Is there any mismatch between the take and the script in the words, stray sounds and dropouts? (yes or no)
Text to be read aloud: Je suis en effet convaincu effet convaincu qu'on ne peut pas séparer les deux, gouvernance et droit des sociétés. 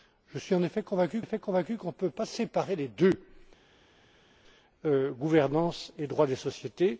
no